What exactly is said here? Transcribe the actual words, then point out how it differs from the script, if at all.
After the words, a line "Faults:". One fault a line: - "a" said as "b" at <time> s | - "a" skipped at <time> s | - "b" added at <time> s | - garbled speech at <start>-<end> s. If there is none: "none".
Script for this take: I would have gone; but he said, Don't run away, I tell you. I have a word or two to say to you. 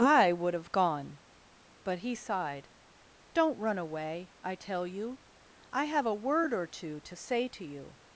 I would have gone; but he sighed, Don't run away, I tell you. I have a word or two to say to you.
Faults:
- "said" said as "sighed" at 2.1 s